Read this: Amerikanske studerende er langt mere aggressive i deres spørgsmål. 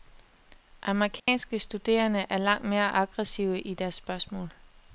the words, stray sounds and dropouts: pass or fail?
fail